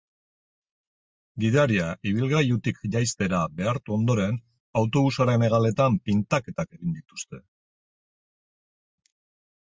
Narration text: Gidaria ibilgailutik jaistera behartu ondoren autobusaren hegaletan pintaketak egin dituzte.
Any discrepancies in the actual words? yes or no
no